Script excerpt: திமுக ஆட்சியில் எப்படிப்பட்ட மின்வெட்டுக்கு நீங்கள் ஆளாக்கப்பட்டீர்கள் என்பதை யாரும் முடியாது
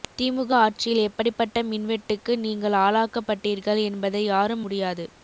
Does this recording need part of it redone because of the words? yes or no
no